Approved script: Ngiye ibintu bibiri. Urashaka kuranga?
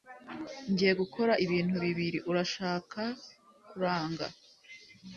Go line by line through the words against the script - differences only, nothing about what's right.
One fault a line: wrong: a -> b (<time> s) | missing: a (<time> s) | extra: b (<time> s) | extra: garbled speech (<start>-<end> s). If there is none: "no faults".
extra: gukora (1.0 s)